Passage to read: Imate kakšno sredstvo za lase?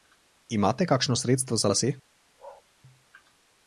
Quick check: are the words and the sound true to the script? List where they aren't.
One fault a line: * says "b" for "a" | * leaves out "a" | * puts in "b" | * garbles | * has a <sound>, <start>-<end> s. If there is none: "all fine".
* has a bark, 2.4-2.6 s